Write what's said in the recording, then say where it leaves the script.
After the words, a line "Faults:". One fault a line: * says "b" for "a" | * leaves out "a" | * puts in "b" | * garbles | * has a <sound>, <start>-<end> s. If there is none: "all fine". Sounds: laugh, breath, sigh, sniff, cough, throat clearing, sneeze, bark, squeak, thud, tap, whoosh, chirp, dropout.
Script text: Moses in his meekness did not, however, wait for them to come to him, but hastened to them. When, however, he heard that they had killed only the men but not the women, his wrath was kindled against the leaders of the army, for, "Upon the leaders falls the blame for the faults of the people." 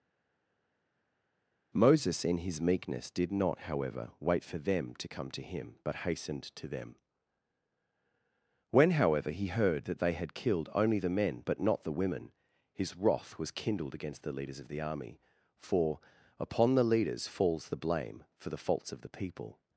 Moses in his meekness did not, however, wait for them to come to him, but hastened to them. When, however, he heard that they had killed only the men but not the women, his wrath was kindled against the leaders of the army, for, "Upon the leaders falls the blame for the faults of the people."
Faults:
all fine